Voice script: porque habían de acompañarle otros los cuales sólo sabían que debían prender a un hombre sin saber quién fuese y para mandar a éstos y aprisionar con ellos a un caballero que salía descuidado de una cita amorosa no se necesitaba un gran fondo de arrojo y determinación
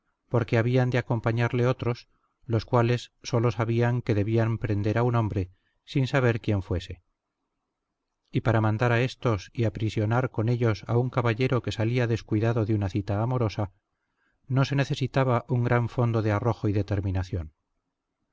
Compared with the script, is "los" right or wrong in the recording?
right